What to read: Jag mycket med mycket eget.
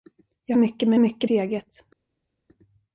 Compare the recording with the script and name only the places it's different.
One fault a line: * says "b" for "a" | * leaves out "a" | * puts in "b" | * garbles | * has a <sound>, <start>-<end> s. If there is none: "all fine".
all fine